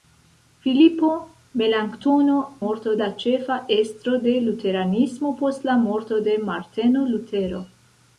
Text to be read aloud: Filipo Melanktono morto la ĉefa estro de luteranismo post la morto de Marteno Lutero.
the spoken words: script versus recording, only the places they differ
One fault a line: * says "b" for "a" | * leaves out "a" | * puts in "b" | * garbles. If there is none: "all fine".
all fine